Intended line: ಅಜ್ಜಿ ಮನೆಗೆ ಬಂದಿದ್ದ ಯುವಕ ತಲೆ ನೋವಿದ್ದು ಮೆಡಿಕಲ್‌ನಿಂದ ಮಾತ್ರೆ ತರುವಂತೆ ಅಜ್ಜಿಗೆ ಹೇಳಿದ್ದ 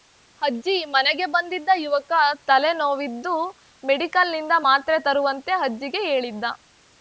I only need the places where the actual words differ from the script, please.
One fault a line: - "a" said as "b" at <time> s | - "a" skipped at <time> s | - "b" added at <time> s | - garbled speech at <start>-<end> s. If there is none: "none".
none